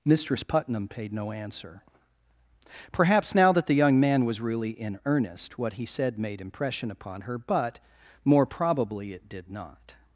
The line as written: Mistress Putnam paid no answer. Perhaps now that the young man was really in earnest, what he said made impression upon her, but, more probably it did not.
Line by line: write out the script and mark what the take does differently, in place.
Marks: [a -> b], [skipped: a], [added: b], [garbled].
Mistress Putnam paid no answer. Perhaps now that the young man was really in earnest, what he said made impression upon her, but, more probably it did not.